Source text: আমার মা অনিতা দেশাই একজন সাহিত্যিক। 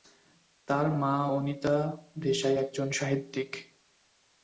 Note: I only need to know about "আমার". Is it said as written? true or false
false